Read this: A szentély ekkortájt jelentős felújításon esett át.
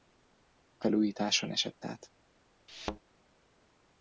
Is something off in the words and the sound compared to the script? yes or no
yes